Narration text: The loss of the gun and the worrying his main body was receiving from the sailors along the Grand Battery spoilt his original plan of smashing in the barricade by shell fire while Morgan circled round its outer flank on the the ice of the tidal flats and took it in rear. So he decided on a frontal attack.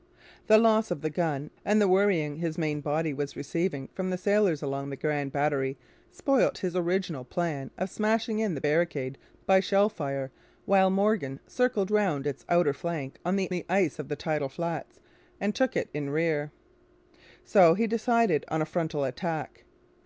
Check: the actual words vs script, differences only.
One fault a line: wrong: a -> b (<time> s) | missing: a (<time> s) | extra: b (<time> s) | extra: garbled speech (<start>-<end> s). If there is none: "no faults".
no faults